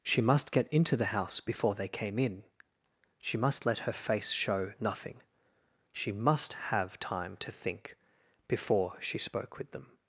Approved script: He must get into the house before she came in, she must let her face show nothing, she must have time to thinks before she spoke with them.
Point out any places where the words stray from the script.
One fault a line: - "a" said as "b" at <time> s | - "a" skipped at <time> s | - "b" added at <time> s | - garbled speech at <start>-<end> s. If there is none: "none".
- "He" said as "She" at 0.0 s
- "she" said as "they" at 1.8 s
- "thinks" said as "think" at 7.5 s